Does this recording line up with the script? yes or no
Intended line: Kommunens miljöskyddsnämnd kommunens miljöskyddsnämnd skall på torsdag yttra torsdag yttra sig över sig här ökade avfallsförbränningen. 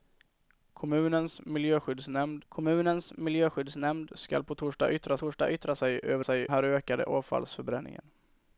yes